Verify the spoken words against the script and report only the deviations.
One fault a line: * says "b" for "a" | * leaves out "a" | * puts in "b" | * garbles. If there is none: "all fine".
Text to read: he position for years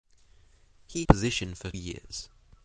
all fine